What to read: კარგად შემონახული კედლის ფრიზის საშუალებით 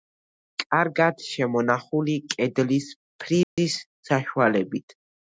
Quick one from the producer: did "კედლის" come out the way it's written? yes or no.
yes